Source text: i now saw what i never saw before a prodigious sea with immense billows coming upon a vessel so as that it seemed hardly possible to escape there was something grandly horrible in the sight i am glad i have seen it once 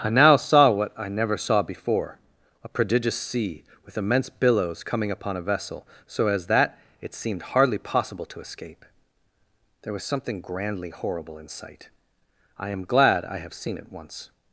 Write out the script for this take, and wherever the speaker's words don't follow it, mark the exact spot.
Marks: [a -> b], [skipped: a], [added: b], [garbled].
i now saw what i never saw before a prodigious sea with immense billows coming upon a vessel so as that it seemed hardly possible to escape there was something grandly horrible in [skipped: the] sight i am glad i have seen it once